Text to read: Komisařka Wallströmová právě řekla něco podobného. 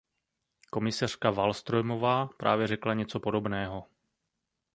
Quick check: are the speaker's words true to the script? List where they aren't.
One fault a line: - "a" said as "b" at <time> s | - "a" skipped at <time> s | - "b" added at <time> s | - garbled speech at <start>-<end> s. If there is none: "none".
none